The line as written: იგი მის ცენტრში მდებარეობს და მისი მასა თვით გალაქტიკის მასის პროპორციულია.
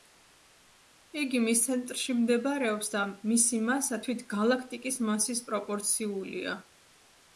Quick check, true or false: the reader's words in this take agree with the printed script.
true